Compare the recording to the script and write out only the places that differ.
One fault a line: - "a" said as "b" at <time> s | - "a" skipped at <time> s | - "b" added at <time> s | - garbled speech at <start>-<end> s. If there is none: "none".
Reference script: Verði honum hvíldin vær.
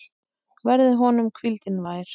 none